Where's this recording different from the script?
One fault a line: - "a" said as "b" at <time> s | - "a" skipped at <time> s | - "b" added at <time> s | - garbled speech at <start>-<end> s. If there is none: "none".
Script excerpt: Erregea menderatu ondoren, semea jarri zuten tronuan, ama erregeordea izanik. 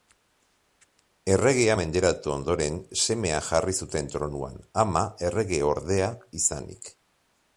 none